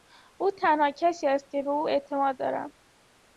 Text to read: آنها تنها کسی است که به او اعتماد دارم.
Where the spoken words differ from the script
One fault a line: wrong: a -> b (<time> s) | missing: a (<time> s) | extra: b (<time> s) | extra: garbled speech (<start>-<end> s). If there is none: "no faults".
wrong: آنها -> او (0.4 s)